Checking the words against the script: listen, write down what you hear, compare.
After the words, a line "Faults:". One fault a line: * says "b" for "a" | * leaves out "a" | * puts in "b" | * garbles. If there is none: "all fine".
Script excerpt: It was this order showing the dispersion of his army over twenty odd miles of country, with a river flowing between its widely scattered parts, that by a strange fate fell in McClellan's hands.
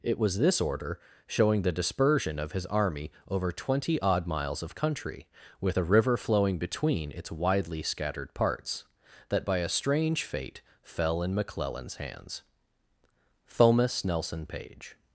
It was this order showing the dispersion of his army over twenty odd miles of country, with a river flowing between its widely scattered parts, that by a strange fate fell in McClellan's hands. THOMAS NELSON PAGE
Faults:
* puts in "THOMAS NELSON PAGE"